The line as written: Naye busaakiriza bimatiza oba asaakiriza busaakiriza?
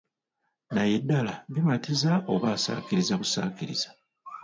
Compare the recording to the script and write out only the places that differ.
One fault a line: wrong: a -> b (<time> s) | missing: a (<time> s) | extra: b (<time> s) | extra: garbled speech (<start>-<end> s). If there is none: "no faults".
wrong: busaakiriza -> ddala (1.0 s)